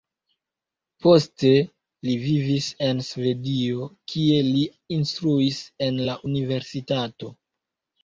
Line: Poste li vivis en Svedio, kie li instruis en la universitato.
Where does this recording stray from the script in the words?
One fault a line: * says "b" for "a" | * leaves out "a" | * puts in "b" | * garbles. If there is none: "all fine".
all fine